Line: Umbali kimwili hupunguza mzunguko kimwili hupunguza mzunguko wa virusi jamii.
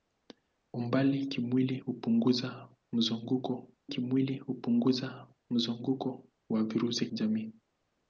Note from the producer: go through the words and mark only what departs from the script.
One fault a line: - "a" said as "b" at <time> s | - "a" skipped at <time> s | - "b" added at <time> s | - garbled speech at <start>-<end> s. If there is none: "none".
none